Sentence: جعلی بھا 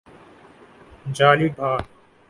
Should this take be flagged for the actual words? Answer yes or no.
no